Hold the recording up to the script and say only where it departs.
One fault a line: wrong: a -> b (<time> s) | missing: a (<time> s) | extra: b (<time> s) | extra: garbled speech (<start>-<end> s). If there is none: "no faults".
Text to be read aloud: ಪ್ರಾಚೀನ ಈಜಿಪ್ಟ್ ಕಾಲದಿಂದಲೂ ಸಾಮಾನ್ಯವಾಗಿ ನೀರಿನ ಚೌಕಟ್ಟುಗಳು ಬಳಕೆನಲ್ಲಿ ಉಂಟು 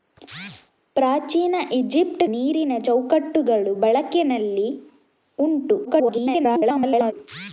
missing: ಕಾಲದಿಂದಲೂ ಸಾಮಾನ್ಯವಾಗಿ (2.2 s)
extra: garbled speech (5.8-7.1 s)